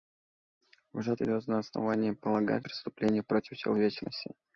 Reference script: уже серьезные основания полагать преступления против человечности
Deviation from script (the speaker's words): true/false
false